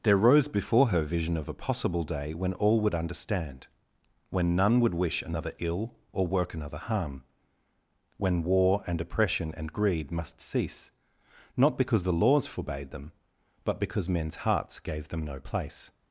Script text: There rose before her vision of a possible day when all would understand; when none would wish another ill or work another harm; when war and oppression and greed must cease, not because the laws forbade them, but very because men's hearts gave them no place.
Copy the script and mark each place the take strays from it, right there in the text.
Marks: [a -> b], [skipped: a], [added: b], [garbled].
There rose before her vision of a possible day when all would understand; when none would wish another ill or work another harm; when war and oppression and greed must cease, not because the laws forbade them, but [skipped: very] because men's hearts gave them no place.